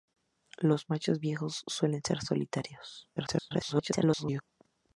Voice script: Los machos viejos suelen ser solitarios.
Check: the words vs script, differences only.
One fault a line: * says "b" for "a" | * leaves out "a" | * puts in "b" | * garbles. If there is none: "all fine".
* garbles